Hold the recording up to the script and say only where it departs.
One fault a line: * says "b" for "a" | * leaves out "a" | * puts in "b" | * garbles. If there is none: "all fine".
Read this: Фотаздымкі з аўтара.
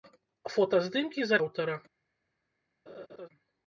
all fine